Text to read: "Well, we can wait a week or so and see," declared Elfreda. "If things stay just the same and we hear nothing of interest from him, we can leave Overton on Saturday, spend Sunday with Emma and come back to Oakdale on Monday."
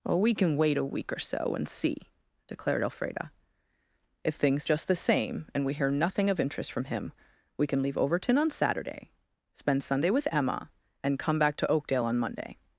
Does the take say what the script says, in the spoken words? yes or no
no